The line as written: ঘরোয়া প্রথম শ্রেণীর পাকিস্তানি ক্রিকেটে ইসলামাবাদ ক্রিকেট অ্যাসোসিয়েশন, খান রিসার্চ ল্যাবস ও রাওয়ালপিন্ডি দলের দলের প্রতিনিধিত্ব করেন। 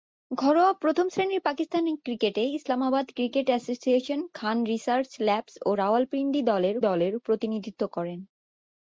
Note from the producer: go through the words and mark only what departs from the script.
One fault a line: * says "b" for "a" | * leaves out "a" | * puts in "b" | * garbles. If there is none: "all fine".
all fine